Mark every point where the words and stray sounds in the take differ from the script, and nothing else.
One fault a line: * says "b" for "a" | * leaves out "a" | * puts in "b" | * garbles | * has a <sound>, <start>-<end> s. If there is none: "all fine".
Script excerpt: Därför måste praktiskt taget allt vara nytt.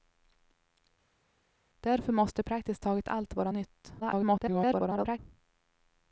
* garbles